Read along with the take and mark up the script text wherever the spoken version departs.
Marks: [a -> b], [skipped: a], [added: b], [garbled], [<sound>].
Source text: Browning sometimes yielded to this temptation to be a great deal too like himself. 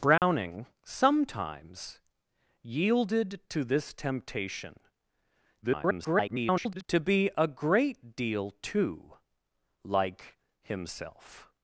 Browning [dropout] sometimes yielded to this temptation [garbled] to be a great deal too like himself.